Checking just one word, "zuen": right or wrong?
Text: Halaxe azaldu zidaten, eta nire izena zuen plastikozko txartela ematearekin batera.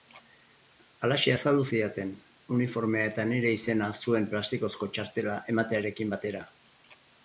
right